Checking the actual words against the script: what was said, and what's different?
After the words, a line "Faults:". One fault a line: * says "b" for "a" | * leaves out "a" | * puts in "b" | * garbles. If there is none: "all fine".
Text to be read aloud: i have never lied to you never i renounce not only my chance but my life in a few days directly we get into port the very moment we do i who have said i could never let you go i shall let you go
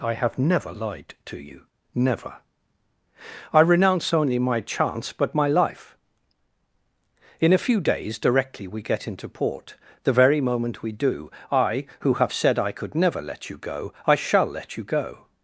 i have never lied to you never i renounce only my chance but my life in a few days directly we get into port the very moment we do i who have said i could never let you go i shall let you go
Faults:
* leaves out "not"